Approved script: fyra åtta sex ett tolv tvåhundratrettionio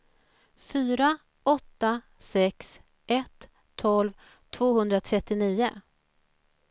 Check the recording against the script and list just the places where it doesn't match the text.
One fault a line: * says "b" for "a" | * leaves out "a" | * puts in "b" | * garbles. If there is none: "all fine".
all fine